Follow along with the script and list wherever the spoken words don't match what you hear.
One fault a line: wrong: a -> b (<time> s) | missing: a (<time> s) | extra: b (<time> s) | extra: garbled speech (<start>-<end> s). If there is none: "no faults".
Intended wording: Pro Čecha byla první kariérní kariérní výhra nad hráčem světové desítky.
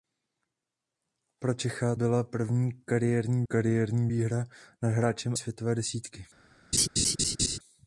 no faults